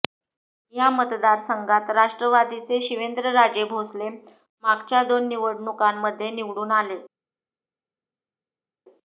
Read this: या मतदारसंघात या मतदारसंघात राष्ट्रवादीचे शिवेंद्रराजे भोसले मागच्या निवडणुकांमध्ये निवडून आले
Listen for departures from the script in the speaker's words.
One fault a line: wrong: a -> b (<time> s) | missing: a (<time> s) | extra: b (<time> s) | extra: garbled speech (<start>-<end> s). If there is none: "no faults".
missing: या मतदारसंघात (1.9 s)
extra: दोन (5.0 s)